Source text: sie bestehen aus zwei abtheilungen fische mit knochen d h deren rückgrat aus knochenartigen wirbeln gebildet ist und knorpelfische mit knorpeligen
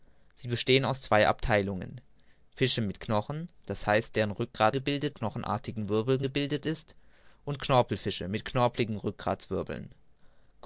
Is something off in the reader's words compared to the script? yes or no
yes